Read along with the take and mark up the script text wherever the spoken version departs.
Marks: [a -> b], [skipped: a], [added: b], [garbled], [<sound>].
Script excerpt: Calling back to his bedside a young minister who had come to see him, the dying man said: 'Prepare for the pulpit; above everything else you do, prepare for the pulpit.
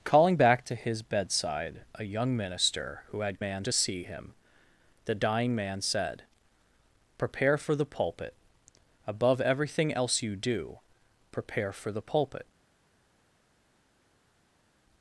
Calling back to his bedside a young minister who had [come -> man] to see him, the dying man said: 'Prepare for the pulpit; above everything else you do, prepare for the pulpit.